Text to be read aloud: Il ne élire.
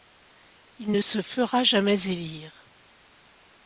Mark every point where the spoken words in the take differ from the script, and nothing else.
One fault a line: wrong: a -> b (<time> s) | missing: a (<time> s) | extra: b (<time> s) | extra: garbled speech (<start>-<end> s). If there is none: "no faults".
extra: se fera jamais (1.0 s)